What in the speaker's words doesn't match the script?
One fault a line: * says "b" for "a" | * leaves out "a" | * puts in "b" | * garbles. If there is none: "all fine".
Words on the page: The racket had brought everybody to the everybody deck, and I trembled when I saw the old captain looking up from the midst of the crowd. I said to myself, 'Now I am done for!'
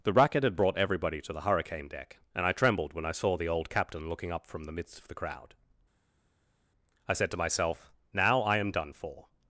* says "hurricane" for "everybody"